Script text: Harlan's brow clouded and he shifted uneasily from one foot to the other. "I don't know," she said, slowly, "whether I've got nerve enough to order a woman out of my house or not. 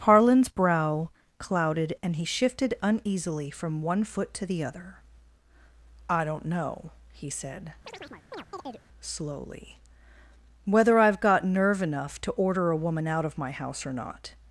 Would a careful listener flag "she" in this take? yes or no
yes